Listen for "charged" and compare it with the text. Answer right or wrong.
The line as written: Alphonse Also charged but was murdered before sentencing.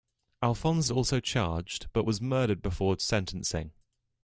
right